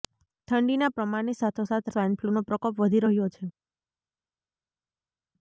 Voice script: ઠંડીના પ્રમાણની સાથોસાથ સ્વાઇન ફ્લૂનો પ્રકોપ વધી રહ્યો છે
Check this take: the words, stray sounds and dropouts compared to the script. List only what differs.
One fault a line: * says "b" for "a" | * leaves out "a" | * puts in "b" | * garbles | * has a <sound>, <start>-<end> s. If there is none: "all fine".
all fine